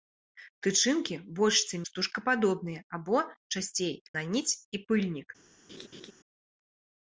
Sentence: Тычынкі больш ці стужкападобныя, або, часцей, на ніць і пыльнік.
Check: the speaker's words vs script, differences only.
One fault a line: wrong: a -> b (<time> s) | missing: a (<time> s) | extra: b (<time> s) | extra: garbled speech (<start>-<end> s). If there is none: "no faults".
no faults